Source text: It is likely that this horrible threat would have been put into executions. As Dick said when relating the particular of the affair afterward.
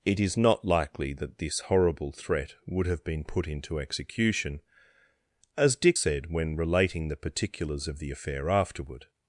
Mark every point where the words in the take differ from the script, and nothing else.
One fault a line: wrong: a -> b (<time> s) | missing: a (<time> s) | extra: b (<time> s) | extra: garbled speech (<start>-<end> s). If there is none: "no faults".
extra: not (0.3 s)
wrong: executions -> execution (3.8 s)
wrong: particular -> particulars (7.2 s)